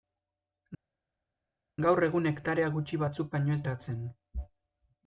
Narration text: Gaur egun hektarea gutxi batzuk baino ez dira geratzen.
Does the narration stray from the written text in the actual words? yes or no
yes